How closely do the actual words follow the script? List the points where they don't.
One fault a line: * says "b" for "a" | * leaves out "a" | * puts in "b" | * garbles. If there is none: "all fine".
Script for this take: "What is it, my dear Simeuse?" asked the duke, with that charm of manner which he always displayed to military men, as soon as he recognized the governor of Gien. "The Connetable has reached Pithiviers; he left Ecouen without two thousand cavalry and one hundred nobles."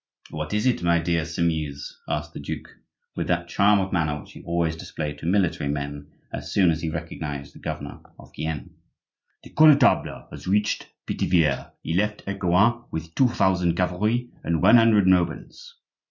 * says "with" for "without"